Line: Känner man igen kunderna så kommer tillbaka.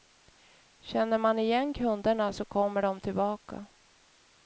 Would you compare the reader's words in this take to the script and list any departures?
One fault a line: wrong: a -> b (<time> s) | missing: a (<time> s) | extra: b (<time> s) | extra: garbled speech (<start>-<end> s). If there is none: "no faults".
extra: de (2.8 s)